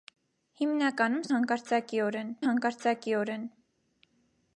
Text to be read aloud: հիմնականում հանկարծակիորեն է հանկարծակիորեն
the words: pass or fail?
pass